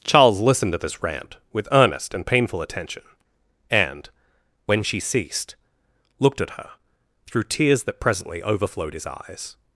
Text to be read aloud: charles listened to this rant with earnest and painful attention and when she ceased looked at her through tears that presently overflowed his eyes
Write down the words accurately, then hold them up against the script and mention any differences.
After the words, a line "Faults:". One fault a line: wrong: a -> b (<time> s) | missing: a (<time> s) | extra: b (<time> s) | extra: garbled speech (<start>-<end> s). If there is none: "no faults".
charles listened to this rant with earnest and painful attention and when she ceased looked at her through tears that presently overflowed his eyes
Faults:
no faults